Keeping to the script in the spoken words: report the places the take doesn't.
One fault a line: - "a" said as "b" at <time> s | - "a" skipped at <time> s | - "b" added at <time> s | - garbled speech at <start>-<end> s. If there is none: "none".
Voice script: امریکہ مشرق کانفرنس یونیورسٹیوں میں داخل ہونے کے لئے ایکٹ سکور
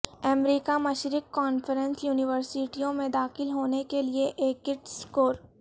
none